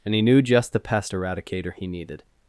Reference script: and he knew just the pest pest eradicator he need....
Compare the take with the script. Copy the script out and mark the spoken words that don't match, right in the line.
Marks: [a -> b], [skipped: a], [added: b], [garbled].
and he knew just the pest [skipped: pest] eradicator he [need.... -> needed]